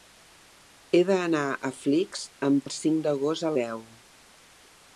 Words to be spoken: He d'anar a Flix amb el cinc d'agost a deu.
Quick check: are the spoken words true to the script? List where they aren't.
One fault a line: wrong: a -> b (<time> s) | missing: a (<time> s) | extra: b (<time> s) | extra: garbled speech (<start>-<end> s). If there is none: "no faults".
no faults